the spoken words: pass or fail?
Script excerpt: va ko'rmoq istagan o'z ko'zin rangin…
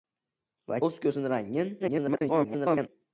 fail